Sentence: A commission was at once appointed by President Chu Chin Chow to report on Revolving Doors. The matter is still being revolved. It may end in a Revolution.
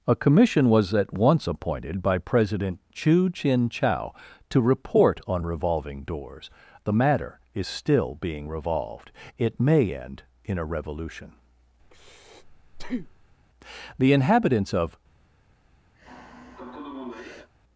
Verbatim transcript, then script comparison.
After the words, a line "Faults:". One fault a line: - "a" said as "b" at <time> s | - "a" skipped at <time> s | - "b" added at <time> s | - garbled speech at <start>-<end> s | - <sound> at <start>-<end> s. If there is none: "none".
A commission was at once appointed by President Chu Chin Chow to report on Revolving Doors. The matter is still being revolved. It may end in a Revolution. The inhabitants of
Faults:
- breath at 11.8-13.4 s
- "The inhabitants of" added at 14.0 s
- sigh at 15.9-17.5 s